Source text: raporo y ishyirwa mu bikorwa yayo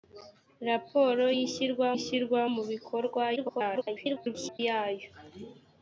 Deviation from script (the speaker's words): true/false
true